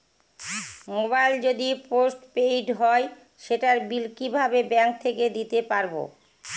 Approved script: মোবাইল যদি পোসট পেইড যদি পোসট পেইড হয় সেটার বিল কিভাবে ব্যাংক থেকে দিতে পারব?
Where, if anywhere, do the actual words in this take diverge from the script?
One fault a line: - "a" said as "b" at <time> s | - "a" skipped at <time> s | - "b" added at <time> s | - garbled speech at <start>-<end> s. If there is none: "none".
- "যদি পোসট পেইড" skipped at 2.7 s